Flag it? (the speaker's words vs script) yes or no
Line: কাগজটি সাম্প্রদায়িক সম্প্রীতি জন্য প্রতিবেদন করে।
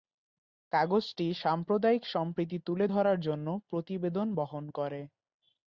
yes